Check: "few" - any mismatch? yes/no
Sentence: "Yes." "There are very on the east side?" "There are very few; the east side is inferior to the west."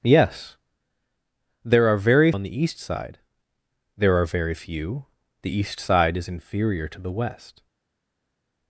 no